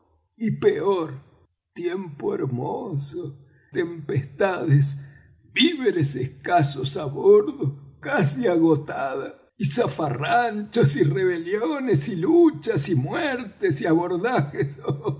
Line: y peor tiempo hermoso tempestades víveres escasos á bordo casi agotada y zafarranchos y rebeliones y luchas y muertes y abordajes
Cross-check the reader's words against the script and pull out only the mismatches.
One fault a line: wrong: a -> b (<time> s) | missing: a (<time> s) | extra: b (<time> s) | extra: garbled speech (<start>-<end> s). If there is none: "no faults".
no faults